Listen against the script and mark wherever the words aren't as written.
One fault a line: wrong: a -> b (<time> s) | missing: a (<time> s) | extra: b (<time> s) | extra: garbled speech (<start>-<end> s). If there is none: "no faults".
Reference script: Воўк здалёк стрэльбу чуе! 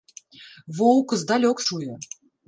missing: стрэльбу (1.6 s)